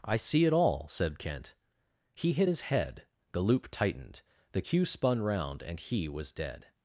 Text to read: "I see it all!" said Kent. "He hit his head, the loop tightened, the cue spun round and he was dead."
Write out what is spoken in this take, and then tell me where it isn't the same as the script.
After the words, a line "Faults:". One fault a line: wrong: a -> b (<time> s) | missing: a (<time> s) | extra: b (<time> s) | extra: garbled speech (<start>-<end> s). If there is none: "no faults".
"I see it all!" said Kent. "He hit his head, the loop tightened, the cue spun round and he was dead."
Faults:
no faults